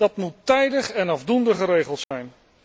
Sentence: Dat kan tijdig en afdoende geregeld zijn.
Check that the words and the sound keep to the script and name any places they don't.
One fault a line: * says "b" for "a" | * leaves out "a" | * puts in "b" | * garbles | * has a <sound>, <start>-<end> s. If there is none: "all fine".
* says "moet" for "kan"
* has a dropout, 2.0-2.1 s